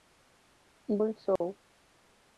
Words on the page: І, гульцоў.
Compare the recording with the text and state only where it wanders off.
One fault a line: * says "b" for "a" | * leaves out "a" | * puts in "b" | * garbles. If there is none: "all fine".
all fine